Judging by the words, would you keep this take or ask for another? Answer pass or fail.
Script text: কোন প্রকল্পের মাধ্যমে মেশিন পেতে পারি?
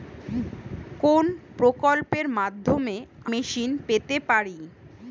pass